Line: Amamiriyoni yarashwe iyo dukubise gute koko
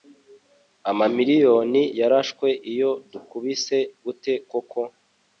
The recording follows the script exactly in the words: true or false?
true